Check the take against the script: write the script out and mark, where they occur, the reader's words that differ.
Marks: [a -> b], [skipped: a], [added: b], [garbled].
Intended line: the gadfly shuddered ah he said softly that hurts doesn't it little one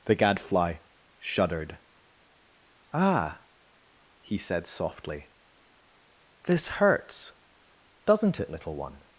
the gadfly shuddered ah he said softly [that -> this] hurts doesn't it little one